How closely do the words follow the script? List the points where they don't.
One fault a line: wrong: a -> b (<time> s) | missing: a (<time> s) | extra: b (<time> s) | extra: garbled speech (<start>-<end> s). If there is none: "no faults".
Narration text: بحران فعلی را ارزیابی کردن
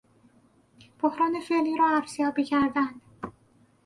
no faults